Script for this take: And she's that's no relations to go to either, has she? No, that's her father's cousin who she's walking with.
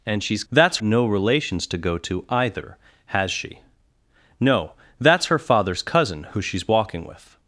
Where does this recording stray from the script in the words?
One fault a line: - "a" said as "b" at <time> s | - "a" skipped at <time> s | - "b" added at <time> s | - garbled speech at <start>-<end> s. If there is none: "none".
none